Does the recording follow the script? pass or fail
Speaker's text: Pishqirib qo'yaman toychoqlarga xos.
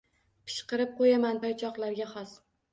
pass